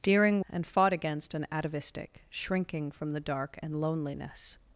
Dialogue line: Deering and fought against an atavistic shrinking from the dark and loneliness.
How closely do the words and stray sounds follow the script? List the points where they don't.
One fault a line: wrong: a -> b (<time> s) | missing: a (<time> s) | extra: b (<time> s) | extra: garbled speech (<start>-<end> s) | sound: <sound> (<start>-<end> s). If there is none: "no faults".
no faults